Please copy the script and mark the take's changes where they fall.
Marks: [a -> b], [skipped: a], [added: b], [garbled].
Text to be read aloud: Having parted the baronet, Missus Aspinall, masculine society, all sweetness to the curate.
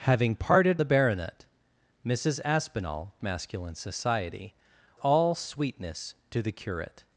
Having parted the baronet, Missus Aspinall, masculine society, all sweetness to the curate.